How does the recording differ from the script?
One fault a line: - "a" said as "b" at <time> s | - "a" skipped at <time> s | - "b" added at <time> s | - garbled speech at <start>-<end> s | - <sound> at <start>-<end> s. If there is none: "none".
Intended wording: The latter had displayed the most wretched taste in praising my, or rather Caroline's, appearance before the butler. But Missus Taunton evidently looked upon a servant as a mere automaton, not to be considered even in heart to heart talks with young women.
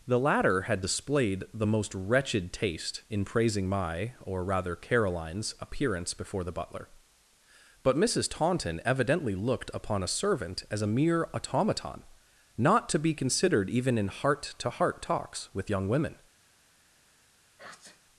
- sneeze at 17.6-18.0 s